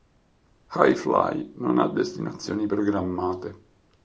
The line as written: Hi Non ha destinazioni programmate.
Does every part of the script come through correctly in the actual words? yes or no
no